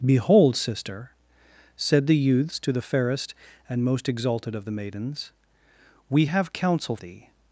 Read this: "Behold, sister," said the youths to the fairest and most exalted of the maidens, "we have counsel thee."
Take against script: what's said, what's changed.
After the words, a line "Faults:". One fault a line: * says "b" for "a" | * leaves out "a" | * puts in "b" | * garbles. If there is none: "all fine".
"Behold, sister," said the youths to the fairest and most exalted of the maidens, "we have counsel thee."
Faults:
all fine